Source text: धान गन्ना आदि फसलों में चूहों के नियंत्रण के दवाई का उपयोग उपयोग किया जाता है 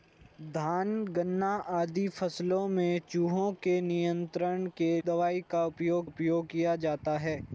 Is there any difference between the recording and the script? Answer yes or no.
no